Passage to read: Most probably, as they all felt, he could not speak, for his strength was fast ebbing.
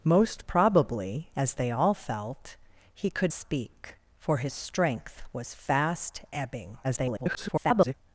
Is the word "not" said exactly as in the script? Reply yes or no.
no